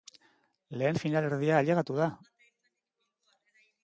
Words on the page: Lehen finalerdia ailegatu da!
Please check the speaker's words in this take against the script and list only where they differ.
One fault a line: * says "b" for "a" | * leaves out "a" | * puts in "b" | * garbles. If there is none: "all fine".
all fine